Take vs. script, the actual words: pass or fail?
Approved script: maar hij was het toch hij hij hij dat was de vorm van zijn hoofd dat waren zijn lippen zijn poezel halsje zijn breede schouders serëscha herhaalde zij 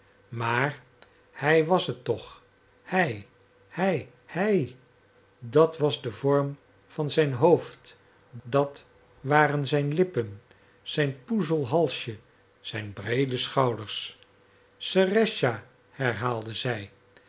pass